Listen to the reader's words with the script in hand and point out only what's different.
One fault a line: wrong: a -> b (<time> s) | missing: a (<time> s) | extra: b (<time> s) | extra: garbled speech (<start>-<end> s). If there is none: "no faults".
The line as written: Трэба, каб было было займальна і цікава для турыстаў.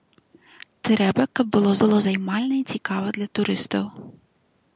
no faults